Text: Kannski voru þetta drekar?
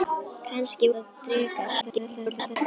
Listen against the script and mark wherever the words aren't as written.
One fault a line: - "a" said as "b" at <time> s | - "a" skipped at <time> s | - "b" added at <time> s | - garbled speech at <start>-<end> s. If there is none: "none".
- "voru" skipped at 0.9 s
- garbled speech at 1.8-2.6 s